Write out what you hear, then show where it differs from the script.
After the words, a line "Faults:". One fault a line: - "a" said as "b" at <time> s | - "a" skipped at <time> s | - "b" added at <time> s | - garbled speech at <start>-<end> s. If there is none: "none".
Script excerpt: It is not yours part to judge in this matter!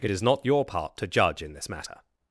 It is not your part to judge in this matter!
Faults:
- "yours" said as "your" at 0.4 s